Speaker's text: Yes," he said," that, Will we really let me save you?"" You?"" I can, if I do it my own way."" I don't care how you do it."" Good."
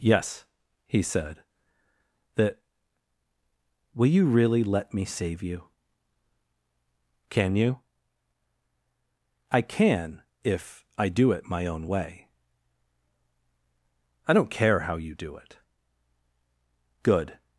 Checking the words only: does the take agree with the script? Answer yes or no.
no